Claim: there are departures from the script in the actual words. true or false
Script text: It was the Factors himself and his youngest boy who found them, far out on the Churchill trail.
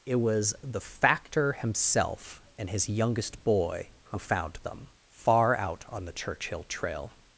true